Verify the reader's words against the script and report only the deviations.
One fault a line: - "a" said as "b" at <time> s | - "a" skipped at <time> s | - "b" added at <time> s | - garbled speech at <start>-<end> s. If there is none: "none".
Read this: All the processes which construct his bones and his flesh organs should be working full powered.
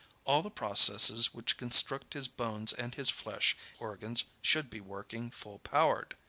none